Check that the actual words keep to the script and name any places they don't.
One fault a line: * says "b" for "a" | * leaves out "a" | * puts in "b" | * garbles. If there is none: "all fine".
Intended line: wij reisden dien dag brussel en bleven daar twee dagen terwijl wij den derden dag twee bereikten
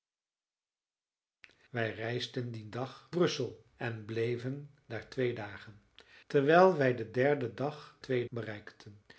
all fine